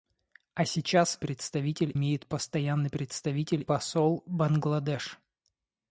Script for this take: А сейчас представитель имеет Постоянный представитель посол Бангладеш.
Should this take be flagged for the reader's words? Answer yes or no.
no